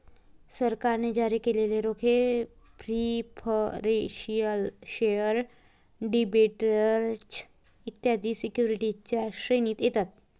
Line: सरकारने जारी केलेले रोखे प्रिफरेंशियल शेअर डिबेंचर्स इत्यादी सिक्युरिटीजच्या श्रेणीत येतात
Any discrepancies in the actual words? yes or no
no